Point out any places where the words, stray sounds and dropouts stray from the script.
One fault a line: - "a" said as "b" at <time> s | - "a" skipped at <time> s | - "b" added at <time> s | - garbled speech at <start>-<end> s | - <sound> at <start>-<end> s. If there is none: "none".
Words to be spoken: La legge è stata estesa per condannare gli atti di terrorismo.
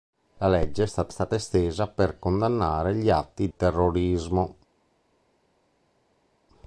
- "stata" added at 1.1 s
- "di" skipped at 3.5 s